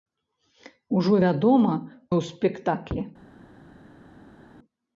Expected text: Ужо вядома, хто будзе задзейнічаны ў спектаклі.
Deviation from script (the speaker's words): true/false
true